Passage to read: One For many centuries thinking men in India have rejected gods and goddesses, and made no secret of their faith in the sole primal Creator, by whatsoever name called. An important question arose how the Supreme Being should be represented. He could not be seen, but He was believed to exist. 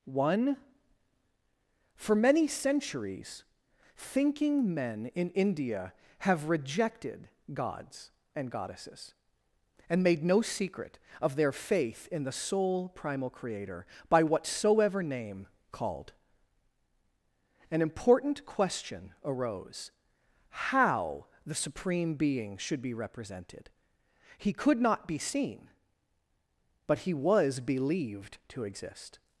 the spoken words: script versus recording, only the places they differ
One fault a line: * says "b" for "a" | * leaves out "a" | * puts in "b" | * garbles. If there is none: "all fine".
all fine